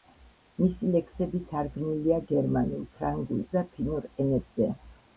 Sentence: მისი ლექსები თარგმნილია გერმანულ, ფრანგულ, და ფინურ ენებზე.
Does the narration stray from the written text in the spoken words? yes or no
no